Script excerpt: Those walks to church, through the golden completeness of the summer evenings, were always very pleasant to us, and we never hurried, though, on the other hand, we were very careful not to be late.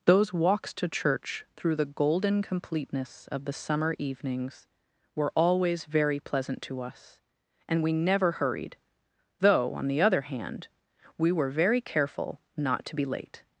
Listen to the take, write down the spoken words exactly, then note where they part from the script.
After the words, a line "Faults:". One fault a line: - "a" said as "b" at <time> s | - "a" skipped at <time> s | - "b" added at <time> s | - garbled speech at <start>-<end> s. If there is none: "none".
Those walks to church, through the golden completeness of the summer evenings, were always very pleasant to us, and we never hurried, though, on the other hand, we were very careful not to be late.
Faults:
none